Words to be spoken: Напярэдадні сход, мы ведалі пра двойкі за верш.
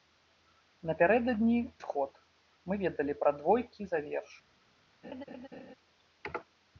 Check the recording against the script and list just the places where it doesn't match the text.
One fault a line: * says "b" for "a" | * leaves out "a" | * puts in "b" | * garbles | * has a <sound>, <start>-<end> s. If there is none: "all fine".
* has a laugh, 5.0-5.7 s